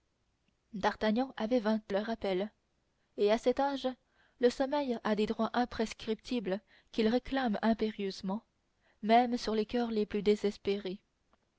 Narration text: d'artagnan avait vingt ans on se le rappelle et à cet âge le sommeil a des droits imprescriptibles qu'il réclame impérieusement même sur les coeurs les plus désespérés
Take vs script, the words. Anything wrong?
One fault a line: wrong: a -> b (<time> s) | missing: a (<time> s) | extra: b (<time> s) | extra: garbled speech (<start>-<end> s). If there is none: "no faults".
missing: ans on se (1.9 s)